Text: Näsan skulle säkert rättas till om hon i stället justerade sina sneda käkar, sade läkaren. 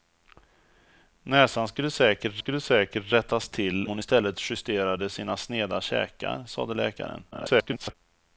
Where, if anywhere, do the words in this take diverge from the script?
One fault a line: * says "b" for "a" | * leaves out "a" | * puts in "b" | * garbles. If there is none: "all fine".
* puts in "skulle säkert"
* leaves out "om"
* garbles